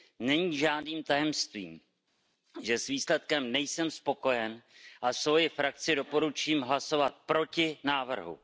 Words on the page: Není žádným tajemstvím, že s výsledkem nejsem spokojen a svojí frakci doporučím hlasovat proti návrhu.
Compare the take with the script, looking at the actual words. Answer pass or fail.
pass